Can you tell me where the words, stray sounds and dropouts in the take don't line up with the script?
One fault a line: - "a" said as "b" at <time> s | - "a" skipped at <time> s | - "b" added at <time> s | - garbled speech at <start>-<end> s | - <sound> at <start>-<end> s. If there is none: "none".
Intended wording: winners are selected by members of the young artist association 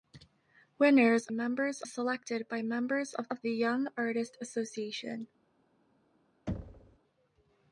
- "are" said as "members" at 1.3 s
- "of" added at 3.3 s
- thud at 6.5-7.0 s